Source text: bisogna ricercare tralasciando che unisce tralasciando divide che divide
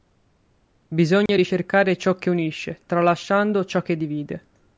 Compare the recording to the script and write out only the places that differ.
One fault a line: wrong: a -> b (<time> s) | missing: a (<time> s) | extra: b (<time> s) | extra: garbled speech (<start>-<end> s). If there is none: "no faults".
wrong: tralasciando -> ciò (2.0 s)
wrong: divide -> ciò (3.6 s)